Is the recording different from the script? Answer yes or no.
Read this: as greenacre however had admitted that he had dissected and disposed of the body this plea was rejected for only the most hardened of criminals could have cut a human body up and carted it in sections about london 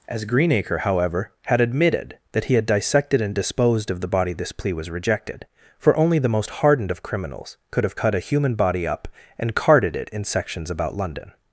no